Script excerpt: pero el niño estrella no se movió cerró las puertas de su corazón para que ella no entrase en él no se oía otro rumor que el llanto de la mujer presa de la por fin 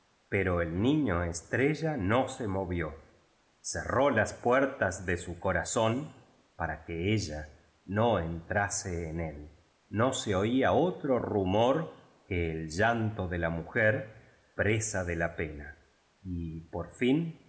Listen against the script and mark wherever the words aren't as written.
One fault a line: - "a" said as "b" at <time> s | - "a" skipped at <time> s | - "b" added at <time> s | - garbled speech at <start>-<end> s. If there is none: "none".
- "pena y" added at 15.3 s